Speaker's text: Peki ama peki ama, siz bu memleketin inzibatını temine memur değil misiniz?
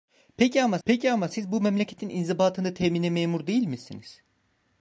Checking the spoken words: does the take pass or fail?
pass